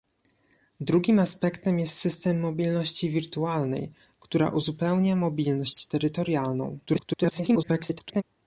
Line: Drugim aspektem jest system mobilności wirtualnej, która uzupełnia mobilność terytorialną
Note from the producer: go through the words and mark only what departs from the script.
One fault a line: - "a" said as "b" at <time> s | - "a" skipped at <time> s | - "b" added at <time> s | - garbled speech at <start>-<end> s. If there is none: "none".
- garbled speech at 6.9-8.2 s